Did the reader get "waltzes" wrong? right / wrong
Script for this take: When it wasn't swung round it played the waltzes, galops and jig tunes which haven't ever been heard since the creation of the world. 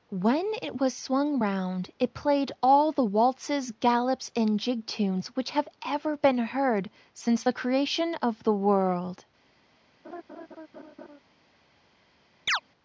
right